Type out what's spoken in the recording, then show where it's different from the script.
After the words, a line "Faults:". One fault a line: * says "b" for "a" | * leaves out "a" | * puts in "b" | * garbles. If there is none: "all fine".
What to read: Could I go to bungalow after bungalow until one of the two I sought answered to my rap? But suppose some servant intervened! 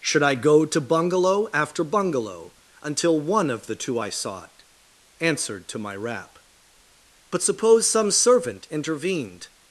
Should I go to bungalow after bungalow until one of the two I sought answered to my rap? But suppose some servant intervened!
Faults:
* says "Should" for "Could"